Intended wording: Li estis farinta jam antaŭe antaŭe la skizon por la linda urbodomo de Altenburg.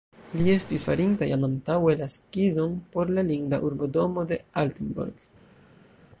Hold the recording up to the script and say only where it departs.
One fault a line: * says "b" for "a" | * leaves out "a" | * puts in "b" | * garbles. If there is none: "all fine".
* leaves out "antaŭe"